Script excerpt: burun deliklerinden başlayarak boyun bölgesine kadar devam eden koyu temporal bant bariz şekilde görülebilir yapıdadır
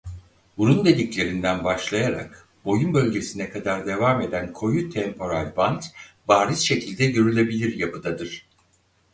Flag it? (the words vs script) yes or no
no